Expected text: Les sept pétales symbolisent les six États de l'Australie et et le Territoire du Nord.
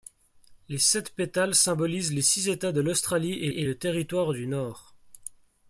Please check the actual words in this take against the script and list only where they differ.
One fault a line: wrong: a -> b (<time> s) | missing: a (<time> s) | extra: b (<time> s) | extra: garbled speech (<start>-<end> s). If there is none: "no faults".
no faults